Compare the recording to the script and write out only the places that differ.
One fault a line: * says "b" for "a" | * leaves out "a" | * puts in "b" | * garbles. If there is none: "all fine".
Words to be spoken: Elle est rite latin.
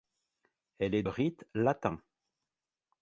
all fine